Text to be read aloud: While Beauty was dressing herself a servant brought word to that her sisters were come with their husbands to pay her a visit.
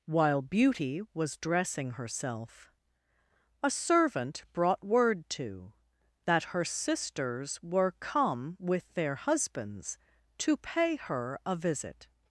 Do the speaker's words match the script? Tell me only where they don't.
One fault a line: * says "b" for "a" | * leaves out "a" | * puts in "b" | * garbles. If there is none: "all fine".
all fine